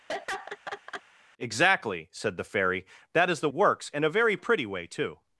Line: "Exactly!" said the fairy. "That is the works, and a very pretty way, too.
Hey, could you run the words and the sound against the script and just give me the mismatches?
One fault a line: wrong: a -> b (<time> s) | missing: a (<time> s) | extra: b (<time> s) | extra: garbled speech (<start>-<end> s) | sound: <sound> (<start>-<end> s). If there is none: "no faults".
sound: laugh (0.1-1.0 s)